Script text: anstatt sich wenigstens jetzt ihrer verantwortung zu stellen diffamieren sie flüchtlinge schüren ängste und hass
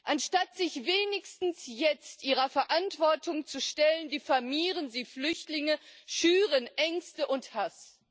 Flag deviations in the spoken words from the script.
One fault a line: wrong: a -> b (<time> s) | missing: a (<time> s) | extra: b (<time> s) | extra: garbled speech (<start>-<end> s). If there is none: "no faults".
no faults